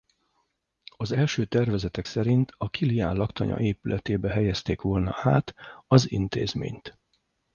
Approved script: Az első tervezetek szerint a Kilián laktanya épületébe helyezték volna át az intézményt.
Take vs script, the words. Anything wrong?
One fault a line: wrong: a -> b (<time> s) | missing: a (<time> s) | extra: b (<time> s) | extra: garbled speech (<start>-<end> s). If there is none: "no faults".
no faults